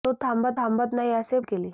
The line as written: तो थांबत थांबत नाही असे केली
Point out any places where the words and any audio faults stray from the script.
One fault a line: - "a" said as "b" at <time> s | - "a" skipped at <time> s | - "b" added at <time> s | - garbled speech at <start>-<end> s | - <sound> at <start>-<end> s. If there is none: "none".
none